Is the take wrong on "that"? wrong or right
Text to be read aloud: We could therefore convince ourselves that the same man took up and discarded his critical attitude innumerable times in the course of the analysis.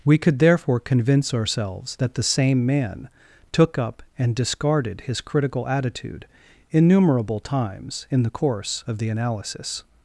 right